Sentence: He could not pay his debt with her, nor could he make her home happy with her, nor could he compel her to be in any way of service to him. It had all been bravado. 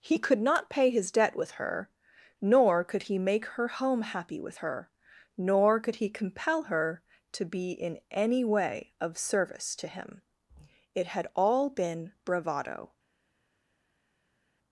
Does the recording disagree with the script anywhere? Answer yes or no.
no